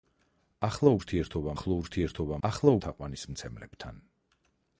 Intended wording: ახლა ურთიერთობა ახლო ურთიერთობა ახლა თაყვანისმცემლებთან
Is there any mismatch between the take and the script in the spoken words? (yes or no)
no